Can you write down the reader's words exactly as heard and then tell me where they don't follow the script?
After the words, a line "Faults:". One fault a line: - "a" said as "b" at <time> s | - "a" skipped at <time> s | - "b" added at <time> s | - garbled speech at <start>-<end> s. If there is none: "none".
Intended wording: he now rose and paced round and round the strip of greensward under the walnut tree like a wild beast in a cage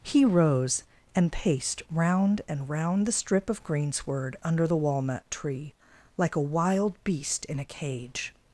he rose and paced round and round the strip of greensward under the walnut tree like a wild beast in a cage
Faults:
- "now" skipped at 0.2 s